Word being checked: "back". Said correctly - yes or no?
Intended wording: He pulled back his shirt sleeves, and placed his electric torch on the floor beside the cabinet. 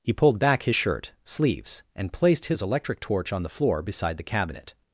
yes